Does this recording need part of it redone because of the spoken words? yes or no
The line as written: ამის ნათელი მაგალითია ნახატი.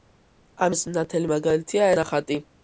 no